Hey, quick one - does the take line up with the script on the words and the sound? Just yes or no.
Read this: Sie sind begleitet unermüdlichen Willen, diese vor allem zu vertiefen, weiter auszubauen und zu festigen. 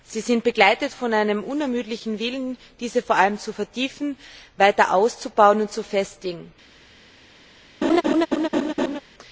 no